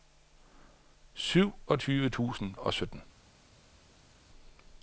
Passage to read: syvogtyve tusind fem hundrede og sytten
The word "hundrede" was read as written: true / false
false